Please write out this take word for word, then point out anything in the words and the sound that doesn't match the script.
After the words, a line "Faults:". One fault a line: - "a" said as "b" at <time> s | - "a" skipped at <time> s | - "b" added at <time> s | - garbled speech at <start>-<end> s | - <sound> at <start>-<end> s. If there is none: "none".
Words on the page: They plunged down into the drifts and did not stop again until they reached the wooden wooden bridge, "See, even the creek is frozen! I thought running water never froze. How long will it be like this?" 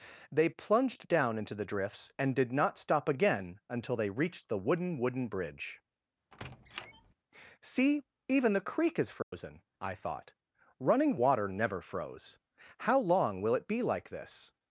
They plunged down into the drifts and did not stop again until they reached the wooden wooden bridge, "See, even the creek is frozen! I thought running water never froze. How long will it be like this?"
Faults:
- squeak at 6.3-7.1 s
- dropout at 9.2-9.3 s